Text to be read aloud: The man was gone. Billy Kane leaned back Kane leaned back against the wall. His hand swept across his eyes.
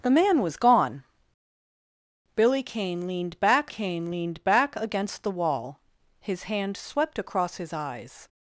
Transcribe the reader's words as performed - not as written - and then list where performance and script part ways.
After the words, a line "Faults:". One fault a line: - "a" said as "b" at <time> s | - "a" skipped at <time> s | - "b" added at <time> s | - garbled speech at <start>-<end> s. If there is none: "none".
The man was gone. Billy Kane leaned back Kane leaned back against the wall. His hand swept across his eyes.
Faults:
none